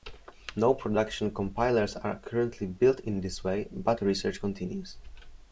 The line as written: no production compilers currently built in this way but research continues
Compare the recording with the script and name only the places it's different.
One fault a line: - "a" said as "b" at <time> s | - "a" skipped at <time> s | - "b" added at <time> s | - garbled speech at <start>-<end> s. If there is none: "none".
- "are" added at 1.9 s